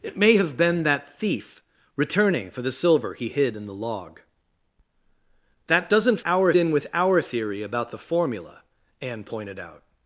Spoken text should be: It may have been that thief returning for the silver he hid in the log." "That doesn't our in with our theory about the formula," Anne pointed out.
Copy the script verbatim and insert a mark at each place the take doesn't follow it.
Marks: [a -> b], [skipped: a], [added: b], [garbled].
It may have been that thief returning for the silver he hid in the log." "That doesn't our in with our theory about the formula," Anne pointed out.